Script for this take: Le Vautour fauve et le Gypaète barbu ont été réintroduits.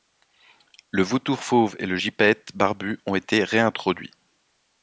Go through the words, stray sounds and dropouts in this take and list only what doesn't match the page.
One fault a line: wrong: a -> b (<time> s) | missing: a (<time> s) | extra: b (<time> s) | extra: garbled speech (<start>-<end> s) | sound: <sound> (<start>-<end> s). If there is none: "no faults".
no faults